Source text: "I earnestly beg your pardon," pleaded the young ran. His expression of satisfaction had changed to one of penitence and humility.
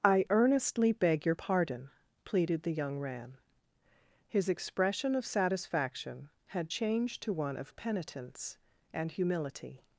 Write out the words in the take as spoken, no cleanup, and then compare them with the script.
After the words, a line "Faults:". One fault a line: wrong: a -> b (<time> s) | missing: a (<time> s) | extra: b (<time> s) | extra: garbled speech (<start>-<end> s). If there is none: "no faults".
"I earnestly beg your pardon," pleaded the young ran. His expression of satisfaction had changed to one of penitence and humility.
Faults:
no faults